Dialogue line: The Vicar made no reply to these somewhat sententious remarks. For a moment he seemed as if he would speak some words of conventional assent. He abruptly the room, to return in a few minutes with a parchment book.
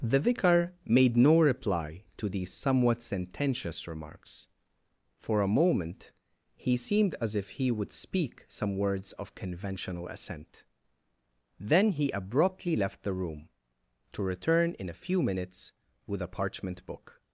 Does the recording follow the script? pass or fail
fail